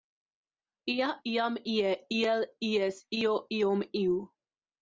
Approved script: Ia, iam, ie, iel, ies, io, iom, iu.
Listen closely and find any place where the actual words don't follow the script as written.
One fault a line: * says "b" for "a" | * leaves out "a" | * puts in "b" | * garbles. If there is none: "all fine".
all fine